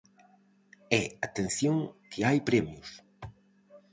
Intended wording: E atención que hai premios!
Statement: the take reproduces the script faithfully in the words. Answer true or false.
true